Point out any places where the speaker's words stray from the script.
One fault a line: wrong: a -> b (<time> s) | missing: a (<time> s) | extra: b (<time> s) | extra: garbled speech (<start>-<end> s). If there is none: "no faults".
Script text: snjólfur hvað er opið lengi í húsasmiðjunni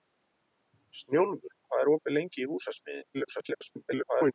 extra: garbled speech (3.1-4.3 s)